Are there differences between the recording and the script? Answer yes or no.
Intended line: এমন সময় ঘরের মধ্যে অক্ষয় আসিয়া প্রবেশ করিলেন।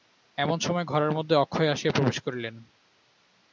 no